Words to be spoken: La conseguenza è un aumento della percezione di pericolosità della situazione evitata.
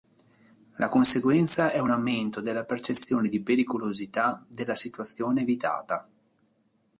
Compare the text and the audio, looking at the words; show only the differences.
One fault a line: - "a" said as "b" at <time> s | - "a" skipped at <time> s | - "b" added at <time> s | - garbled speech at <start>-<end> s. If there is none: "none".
none